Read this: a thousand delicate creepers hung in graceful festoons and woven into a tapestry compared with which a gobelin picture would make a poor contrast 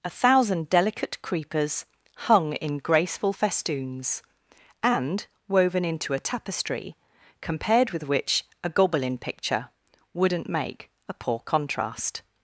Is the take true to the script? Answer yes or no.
no